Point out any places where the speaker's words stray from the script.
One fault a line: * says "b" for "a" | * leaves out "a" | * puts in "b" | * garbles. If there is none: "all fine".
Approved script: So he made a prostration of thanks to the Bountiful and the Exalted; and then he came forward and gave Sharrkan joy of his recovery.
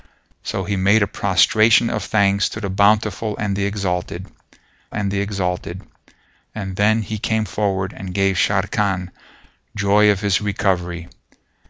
* puts in "the Exalted and"